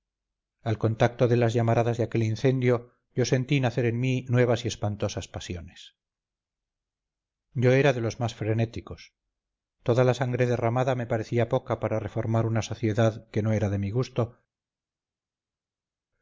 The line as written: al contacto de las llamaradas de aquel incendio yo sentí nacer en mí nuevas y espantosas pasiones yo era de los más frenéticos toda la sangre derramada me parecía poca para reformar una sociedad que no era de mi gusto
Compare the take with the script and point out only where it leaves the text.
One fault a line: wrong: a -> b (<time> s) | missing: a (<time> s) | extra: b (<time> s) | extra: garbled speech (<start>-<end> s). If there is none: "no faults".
no faults